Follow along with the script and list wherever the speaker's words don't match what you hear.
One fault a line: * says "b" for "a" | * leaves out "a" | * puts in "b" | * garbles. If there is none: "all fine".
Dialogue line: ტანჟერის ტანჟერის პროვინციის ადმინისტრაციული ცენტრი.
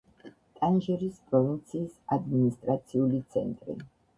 * leaves out "ტანჟერის"